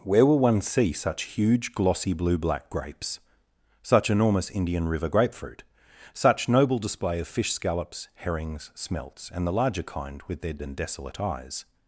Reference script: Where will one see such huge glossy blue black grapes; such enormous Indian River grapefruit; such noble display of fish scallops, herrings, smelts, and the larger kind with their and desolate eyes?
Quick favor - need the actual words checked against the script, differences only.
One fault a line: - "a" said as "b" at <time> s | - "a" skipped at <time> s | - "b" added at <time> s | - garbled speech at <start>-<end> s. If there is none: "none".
none